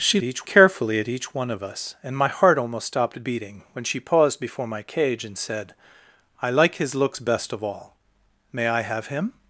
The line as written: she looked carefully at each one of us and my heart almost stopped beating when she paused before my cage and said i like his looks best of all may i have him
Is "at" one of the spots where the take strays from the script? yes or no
no